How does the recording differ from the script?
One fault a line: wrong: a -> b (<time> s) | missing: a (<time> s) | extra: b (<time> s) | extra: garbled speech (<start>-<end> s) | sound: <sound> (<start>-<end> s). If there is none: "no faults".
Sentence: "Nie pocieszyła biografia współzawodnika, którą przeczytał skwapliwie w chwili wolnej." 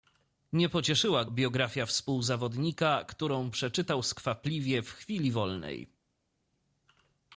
no faults